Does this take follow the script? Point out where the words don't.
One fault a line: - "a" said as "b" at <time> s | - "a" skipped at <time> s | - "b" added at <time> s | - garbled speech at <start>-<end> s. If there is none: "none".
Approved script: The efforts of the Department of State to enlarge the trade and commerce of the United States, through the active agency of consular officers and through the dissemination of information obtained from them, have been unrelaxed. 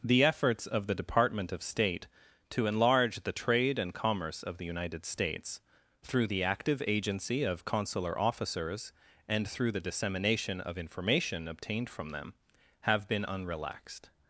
none